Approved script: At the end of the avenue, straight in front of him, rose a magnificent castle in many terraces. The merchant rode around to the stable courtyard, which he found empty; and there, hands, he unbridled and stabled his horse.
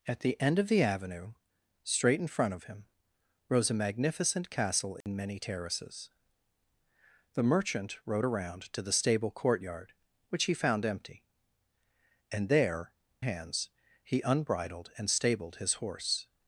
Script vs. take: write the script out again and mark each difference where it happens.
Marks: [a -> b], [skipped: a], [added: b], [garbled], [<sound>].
At the end of the avenue, straight in front of him, rose a magnificent castle in [dropout] many terraces. The merchant rode around to the stable courtyard, which he found empty; and there, hands, he unbridled and stabled his horse.